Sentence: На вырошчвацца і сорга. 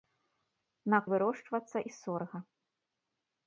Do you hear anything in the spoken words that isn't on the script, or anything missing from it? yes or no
no